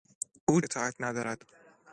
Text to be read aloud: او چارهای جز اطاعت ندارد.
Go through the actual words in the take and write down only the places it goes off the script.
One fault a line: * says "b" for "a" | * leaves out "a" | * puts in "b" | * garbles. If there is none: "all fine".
* leaves out "چارهای جز"